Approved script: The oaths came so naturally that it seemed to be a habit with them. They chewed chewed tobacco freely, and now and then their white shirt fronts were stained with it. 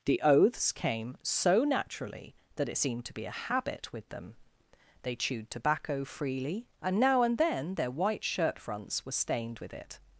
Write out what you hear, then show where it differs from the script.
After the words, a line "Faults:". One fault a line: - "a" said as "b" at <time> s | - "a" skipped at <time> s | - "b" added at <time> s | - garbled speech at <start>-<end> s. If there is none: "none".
The oaths came so naturally that it seemed to be a habit with them. They chewed tobacco freely, and now and then their white shirt fronts were stained with it.
Faults:
- "chewed" skipped at 5.5 s